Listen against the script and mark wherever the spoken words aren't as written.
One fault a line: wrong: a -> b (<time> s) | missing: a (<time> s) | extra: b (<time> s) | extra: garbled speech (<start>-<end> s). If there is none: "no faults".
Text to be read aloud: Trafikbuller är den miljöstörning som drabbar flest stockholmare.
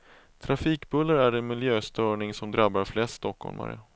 no faults